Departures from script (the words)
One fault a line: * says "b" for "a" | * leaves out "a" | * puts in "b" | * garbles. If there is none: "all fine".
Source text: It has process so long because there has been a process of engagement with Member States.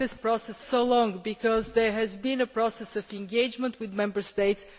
all fine